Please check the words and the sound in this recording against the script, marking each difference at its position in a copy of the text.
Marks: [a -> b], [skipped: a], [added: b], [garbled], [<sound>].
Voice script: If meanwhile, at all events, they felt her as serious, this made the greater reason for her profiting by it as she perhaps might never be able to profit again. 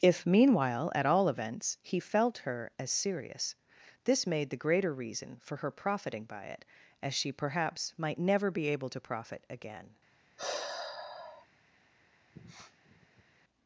If meanwhile, at all events, [they -> he] felt her as serious, this made the greater reason for her profiting by it as she perhaps might never be able to profit again. [sigh] [sniff]